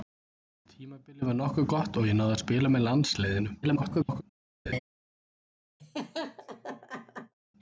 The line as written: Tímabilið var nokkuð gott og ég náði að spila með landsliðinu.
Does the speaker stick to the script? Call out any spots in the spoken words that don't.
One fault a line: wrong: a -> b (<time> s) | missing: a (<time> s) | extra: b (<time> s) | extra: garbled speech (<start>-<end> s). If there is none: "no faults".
extra: garbled speech (3.6-4.2 s)